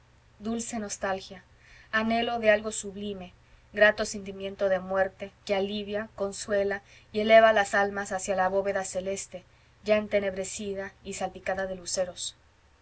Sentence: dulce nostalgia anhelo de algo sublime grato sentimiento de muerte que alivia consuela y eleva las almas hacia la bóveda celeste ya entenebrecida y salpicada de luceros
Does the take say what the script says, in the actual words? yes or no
yes